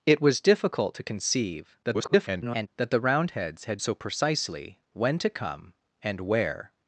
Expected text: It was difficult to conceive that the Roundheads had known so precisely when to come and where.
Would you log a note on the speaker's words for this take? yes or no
yes